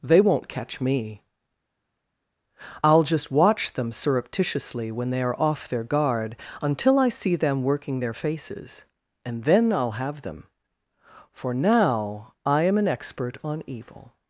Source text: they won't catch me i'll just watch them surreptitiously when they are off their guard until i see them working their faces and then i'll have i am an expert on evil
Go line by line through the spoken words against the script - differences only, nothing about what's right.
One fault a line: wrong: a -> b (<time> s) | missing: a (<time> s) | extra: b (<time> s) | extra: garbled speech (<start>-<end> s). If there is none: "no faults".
extra: them for now (10.2 s)